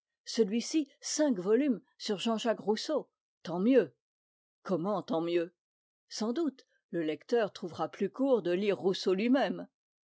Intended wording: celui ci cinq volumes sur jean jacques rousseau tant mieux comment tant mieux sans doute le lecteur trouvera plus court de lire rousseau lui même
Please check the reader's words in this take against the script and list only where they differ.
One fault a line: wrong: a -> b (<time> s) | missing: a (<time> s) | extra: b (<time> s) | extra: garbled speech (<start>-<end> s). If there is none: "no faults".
no faults